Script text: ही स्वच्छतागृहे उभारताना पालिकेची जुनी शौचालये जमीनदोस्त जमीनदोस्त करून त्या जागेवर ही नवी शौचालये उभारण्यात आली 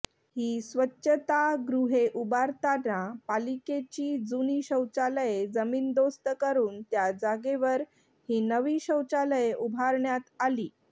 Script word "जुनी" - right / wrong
right